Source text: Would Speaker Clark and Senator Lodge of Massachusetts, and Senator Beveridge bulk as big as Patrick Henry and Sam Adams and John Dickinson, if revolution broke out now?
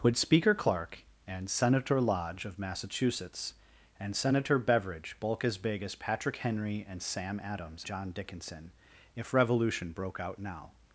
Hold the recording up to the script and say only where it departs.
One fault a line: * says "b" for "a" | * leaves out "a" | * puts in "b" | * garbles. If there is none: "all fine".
* leaves out "and"